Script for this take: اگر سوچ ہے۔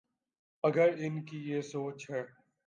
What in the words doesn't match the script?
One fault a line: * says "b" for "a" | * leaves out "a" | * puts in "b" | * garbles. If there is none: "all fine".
* puts in "ان کی یہ"